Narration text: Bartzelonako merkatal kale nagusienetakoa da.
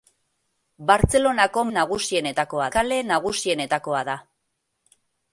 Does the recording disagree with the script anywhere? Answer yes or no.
yes